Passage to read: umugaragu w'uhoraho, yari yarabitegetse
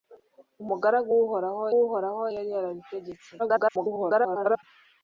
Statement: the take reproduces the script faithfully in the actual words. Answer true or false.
false